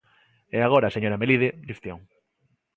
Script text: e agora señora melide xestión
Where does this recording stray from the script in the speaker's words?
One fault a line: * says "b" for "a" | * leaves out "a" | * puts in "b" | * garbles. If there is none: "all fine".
all fine